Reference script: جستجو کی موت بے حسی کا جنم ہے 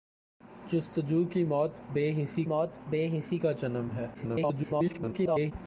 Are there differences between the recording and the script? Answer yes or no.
yes